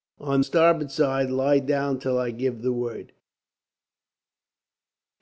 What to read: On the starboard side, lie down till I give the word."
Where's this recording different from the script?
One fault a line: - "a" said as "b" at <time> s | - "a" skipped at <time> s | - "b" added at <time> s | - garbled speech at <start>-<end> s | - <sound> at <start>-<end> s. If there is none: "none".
- "the" skipped at 0.4 s